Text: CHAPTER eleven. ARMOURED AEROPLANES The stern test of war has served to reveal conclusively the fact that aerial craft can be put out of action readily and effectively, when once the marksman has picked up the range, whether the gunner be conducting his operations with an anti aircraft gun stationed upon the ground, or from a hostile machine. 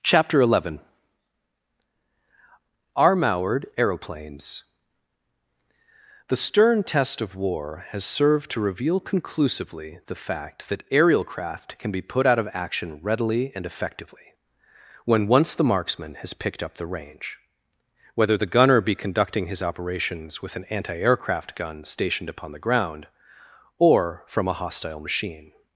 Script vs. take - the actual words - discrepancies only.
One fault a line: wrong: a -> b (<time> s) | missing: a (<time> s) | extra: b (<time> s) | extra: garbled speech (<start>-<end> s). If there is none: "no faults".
no faults